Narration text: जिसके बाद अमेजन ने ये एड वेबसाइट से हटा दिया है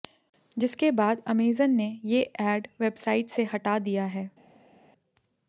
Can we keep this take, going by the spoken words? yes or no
yes